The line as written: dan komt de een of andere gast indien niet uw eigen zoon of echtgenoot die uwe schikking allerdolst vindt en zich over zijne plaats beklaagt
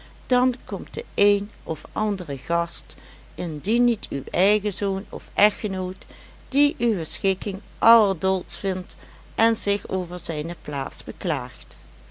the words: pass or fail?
pass